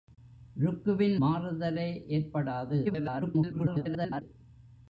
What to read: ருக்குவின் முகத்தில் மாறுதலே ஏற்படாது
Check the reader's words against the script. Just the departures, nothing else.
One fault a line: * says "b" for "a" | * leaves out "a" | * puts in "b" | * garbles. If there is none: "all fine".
* leaves out "முகத்தில்"
* garbles